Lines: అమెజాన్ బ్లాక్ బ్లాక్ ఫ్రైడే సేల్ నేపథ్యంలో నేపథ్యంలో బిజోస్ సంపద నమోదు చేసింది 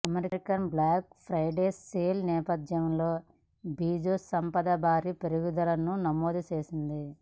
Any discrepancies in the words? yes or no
yes